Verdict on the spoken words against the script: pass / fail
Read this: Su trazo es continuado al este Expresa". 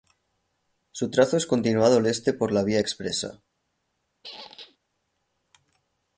fail